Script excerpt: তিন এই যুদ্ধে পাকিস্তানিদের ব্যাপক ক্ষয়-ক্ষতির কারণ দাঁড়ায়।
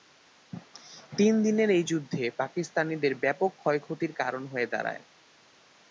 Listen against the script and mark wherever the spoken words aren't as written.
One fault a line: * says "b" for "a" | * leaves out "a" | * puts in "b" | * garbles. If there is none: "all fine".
* puts in "দিনের"
* puts in "হয়ে"